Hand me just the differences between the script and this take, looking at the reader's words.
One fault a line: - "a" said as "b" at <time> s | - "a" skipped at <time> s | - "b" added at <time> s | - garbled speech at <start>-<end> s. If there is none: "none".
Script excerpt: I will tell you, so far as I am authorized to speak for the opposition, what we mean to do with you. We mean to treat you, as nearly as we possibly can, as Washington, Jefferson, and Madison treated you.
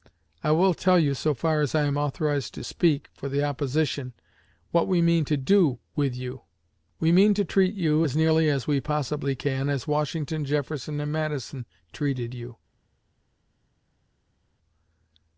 none